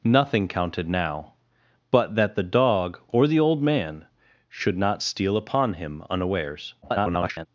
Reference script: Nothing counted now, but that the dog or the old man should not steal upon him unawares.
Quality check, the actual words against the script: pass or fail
fail